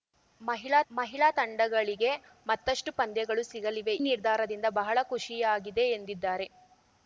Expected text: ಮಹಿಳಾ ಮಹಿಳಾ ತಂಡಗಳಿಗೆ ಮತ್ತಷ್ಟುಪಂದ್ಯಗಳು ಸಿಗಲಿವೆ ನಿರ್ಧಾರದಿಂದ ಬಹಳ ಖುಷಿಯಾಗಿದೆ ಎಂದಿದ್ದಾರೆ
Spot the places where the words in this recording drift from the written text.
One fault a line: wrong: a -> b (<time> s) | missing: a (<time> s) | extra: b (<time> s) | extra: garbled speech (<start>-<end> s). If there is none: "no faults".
no faults